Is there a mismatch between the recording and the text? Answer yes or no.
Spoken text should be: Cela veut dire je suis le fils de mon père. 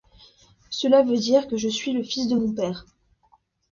yes